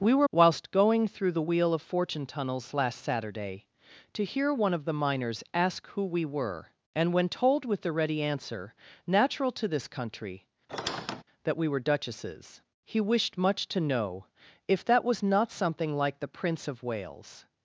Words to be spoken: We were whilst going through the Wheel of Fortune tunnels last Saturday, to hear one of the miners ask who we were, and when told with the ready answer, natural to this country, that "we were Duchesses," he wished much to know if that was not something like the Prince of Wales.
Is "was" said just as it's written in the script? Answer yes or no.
yes